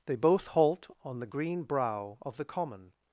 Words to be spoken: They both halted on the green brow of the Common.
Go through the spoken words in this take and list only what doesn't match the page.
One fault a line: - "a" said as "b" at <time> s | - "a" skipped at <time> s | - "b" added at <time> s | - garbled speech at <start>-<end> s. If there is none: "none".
- "halted" said as "halt" at 0.5 s